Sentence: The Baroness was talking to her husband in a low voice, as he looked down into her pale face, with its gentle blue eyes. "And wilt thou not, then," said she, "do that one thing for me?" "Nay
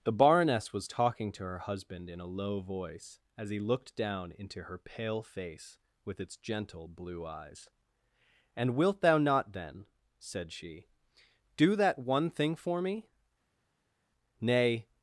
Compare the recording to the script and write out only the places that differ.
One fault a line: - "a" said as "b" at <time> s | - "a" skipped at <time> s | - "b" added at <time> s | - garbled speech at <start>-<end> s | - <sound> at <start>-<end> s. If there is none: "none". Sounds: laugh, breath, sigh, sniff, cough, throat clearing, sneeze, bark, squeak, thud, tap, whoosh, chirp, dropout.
none